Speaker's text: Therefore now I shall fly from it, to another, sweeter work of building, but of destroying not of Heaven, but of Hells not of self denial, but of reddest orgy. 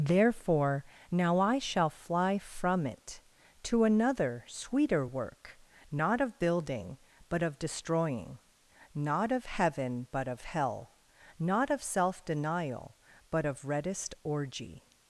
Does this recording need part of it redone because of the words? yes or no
yes